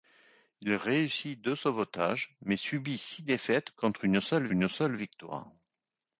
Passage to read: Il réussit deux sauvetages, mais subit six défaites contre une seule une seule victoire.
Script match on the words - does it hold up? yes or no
yes